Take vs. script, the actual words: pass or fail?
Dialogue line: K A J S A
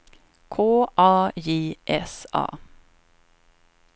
pass